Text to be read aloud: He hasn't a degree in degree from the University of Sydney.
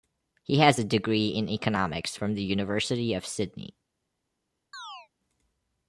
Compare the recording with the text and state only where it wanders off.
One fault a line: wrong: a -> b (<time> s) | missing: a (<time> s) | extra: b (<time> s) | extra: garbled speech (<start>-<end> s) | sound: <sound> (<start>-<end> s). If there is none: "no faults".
wrong: hasn't -> has (0.6 s)
wrong: degree -> economics (1.5 s)
sound: chirp (4.7-5.1 s)